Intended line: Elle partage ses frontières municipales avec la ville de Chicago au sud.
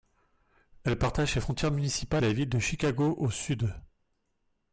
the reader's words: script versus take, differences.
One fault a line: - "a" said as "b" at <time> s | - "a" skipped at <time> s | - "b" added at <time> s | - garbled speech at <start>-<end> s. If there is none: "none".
- "avec" skipped at 2.2 s